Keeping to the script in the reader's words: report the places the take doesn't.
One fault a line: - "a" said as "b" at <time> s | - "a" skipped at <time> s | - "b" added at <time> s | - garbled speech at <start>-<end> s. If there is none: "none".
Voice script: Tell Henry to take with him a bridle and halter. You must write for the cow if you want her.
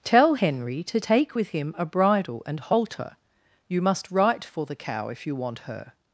none